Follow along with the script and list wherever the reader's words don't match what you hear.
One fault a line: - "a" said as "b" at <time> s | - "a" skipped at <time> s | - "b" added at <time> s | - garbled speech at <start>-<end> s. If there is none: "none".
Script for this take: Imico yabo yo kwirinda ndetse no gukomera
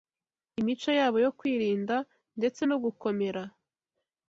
none